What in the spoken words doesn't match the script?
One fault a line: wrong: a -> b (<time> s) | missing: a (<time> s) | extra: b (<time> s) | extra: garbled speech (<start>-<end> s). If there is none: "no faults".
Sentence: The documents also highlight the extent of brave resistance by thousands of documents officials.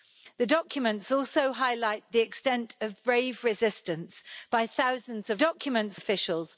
no faults